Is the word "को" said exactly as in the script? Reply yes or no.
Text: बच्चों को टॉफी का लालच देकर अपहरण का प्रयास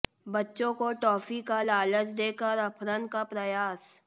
yes